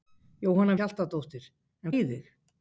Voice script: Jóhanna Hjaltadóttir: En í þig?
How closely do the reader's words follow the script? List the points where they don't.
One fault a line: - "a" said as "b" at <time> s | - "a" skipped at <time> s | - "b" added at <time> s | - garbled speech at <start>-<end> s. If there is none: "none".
none